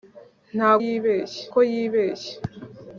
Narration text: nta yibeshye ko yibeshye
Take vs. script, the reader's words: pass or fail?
pass